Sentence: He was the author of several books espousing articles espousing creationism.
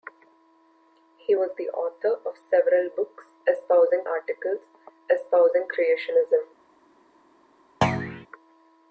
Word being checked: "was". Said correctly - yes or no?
yes